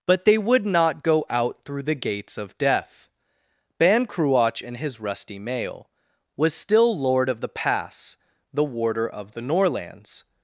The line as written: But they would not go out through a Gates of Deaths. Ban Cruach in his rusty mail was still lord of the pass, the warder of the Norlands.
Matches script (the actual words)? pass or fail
fail